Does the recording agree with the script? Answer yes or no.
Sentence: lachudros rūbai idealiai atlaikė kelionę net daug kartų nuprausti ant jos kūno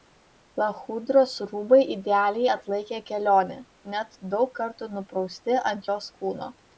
yes